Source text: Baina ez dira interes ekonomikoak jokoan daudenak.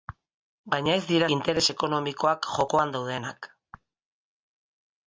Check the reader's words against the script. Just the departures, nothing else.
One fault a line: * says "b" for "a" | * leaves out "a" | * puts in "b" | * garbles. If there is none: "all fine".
all fine